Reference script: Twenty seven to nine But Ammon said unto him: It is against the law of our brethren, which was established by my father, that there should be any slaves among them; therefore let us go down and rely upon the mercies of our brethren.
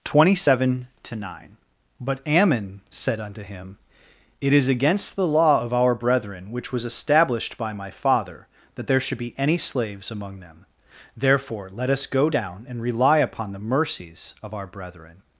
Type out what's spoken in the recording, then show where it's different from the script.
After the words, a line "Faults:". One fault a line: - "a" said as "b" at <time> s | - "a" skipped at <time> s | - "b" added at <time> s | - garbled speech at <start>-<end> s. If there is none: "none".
Twenty seven to nine But Ammon said unto him: It is against the law of our brethren, which was established by my father, that there should be any slaves among them; therefore let us go down and rely upon the mercies of our brethren.
Faults:
none